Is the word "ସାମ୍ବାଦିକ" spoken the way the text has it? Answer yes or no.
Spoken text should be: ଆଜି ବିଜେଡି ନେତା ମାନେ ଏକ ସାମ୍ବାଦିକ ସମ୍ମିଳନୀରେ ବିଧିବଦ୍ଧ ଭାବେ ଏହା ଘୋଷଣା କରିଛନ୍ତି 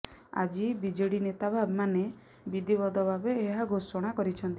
no